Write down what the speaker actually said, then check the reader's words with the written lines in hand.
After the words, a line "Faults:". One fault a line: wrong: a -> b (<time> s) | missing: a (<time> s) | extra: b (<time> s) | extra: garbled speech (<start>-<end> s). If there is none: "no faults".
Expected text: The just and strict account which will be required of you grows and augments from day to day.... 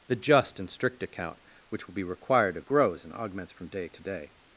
The just and strict account which will be required of grows and augments from day to day....
Faults:
missing: you (2.7 s)